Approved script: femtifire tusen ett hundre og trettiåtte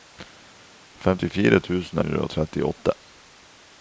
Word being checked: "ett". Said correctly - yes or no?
no